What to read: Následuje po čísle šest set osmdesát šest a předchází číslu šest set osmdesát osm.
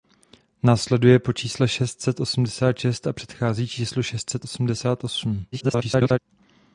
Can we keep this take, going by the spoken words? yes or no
no